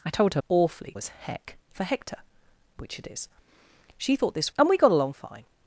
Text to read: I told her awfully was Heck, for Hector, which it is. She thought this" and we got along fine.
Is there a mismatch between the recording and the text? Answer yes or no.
no